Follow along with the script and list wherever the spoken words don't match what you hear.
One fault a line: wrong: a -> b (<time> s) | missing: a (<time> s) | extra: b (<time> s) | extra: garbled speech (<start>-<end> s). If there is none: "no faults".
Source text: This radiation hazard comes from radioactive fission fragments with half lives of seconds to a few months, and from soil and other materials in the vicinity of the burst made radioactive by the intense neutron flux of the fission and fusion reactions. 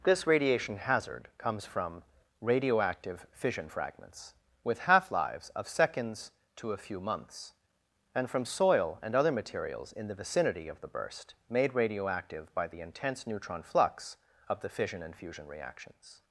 no faults